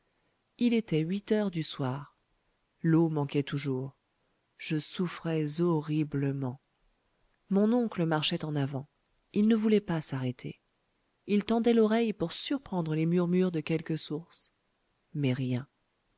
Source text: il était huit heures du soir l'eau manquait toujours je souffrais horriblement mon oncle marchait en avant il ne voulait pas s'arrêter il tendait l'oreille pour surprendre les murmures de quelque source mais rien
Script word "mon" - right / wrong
right